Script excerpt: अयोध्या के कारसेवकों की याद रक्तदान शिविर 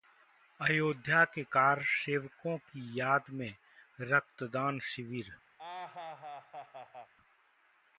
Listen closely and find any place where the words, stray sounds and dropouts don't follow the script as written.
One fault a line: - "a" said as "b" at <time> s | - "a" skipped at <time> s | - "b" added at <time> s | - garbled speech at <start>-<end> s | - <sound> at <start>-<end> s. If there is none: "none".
- "में" added at 3.3 s
- laugh at 5.6-7.1 s